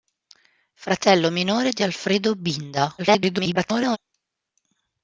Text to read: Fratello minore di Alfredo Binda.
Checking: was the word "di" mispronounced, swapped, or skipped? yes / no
no